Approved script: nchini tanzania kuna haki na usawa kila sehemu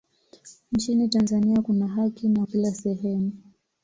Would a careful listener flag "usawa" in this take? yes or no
yes